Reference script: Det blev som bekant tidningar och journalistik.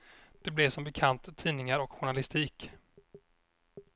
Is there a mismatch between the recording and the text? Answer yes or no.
no